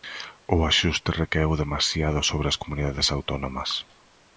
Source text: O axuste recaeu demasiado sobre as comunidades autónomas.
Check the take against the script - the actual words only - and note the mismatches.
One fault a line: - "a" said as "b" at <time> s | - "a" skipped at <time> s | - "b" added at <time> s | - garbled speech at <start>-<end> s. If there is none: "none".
none